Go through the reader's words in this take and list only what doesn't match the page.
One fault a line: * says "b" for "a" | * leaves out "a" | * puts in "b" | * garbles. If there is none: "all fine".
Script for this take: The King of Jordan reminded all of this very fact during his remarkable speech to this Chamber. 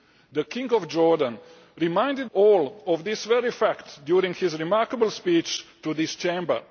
all fine